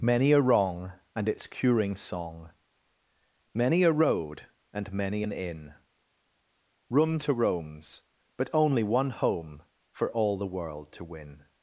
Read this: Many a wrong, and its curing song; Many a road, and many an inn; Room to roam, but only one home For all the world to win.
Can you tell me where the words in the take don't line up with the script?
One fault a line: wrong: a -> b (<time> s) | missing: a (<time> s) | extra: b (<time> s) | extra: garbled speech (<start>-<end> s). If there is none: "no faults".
wrong: roam -> roams (7.3 s)